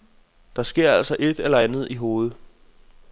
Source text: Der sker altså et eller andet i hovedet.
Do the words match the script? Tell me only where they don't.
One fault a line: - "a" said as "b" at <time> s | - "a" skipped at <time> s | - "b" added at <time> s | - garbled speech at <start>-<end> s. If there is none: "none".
none